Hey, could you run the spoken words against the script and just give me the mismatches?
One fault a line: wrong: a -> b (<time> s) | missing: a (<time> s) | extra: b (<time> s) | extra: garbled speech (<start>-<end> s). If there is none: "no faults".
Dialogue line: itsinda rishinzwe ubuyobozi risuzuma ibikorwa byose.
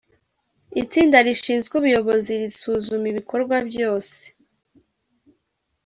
no faults